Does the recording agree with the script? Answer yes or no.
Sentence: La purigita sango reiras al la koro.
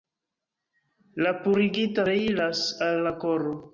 no